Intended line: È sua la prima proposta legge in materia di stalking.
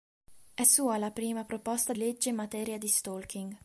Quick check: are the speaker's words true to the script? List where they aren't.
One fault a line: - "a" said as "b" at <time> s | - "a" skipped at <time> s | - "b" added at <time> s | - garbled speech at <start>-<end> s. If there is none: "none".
none